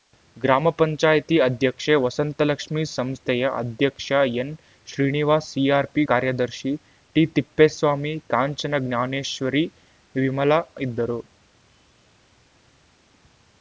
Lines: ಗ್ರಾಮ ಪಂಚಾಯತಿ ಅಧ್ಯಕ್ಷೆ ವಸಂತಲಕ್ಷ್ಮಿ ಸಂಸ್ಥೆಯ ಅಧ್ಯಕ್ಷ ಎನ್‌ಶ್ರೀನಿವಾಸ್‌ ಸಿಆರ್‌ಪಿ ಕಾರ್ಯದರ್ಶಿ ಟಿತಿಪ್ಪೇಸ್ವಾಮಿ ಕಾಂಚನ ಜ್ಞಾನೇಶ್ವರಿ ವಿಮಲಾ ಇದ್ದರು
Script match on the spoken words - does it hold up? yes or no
yes